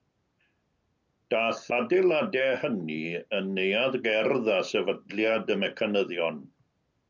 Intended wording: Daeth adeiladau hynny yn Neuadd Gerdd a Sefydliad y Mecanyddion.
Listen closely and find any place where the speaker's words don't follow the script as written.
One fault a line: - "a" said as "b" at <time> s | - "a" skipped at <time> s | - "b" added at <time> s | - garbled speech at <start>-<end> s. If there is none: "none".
none